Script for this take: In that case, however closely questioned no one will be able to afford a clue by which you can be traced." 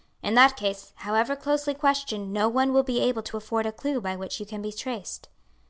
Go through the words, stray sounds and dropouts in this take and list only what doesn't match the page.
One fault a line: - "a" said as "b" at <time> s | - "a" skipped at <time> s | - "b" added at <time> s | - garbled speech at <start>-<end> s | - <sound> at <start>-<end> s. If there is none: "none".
none